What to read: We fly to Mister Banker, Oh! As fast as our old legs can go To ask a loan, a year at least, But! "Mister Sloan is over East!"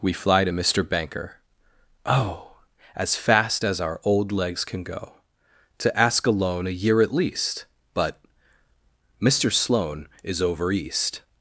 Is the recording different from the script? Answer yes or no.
no